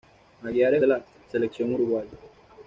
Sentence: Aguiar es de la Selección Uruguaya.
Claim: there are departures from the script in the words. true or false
false